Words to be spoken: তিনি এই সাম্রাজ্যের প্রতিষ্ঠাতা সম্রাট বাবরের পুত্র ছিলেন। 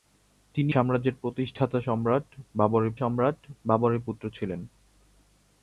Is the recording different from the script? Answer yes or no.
yes